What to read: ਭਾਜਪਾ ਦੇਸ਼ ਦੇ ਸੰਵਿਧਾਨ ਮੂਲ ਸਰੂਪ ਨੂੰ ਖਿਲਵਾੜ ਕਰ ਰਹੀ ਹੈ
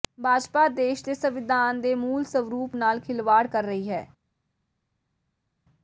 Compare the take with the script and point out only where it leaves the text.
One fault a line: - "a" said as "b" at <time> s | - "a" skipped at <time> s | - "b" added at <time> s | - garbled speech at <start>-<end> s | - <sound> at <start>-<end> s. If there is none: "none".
- "ਦੇ" added at 1.8 s
- "ਨੂੰ" said as "ਨਾਲ" at 2.7 s